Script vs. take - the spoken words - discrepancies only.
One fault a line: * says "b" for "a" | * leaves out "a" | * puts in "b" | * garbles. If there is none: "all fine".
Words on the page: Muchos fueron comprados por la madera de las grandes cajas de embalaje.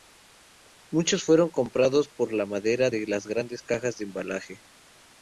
all fine